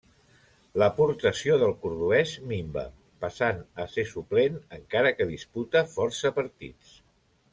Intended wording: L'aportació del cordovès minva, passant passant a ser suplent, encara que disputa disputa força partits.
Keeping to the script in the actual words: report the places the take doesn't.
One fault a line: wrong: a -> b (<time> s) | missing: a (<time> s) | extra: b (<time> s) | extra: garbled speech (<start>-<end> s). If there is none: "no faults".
missing: passant (3.6 s)
missing: disputa (5.9 s)